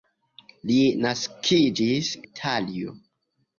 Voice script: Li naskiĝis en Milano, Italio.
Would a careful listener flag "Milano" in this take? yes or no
yes